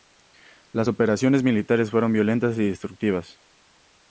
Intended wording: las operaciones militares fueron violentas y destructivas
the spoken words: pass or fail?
pass